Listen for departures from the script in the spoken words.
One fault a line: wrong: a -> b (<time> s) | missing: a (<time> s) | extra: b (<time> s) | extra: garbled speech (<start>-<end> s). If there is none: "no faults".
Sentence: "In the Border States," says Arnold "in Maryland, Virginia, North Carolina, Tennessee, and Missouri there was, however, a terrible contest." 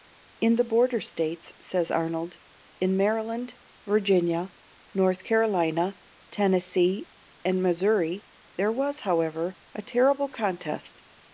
no faults